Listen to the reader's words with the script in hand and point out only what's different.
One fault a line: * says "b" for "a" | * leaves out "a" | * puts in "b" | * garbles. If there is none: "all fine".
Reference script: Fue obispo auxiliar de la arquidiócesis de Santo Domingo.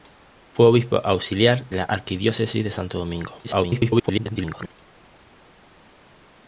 * leaves out "de"
* garbles